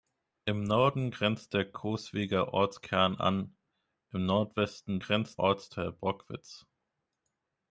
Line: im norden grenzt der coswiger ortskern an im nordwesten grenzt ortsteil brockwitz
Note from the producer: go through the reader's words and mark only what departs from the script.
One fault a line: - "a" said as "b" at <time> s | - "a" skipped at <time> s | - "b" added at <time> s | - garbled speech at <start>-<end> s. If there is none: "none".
none